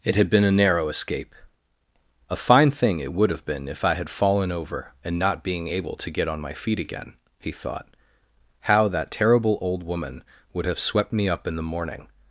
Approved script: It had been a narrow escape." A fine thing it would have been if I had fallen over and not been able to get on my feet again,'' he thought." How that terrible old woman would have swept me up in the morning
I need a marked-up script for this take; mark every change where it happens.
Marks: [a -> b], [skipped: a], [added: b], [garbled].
It had been a narrow escape." A fine thing it would have been if I had fallen over and not [been -> being] able to get on my feet again,'' he thought." How that terrible old woman would have swept me up in the morning